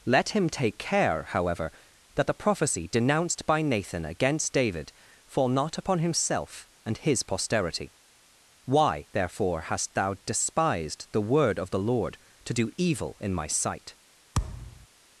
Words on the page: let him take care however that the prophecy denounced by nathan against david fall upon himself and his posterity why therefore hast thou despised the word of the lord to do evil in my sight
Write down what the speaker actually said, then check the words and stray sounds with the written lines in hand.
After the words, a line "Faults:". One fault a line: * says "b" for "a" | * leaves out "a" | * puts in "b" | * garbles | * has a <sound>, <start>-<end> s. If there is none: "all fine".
let him take care however that the prophecy denounced by nathan against david fall not upon himself and his posterity why therefore hast thou despised the word of the lord to do evil in my sight
Faults:
* puts in "not"
* has a thud, 14.3-14.9 s